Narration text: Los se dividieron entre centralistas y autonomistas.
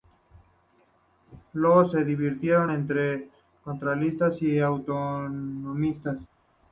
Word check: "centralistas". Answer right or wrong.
right